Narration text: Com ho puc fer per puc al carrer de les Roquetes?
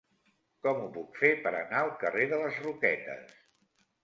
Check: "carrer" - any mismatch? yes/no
no